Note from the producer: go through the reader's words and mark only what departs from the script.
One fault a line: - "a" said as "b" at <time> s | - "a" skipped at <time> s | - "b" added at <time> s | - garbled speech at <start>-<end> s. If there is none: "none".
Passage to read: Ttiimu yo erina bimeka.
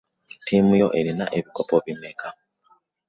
- "ebikopo" added at 1.4 s